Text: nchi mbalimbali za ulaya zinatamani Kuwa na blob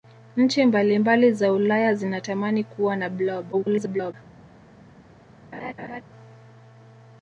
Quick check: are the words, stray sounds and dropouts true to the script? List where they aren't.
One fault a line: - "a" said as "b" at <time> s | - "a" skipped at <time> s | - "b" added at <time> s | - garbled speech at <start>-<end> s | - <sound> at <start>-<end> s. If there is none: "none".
- garbled speech at 3.5-4.1 s
- laugh at 5.5-6.0 s